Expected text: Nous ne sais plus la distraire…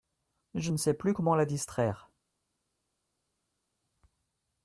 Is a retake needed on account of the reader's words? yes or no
yes